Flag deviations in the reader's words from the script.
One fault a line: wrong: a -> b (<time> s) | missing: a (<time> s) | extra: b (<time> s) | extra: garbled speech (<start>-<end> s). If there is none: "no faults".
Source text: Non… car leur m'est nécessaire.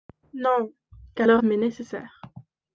no faults